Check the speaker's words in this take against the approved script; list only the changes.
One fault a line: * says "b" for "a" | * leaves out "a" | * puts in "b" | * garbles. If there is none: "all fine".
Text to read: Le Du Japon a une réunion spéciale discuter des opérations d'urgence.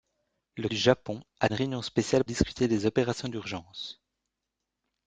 all fine